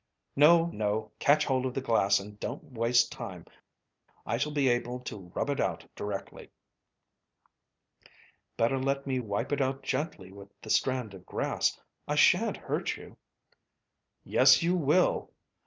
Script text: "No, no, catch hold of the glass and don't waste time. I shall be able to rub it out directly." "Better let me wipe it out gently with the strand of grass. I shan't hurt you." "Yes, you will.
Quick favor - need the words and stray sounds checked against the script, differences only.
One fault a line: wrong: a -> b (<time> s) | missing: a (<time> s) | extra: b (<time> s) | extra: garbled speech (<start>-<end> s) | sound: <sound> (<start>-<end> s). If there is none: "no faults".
no faults